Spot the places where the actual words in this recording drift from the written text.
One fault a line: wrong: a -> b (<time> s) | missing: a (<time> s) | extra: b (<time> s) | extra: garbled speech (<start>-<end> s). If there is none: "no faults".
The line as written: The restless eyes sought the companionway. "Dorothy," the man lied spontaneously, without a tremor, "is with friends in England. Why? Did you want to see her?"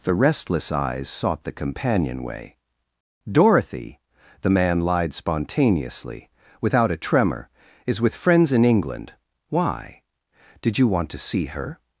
no faults